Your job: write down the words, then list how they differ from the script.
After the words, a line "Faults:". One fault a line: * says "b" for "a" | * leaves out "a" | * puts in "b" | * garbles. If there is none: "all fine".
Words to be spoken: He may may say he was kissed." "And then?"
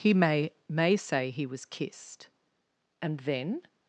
He may may say he was kissed." "And then?"
Faults:
all fine